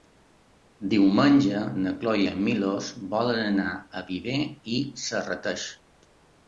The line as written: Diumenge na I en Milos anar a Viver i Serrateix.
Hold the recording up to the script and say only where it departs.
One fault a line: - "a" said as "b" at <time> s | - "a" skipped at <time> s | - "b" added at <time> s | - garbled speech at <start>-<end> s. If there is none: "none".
- "Cloè" added at 2.0 s
- "volen" added at 3.2 s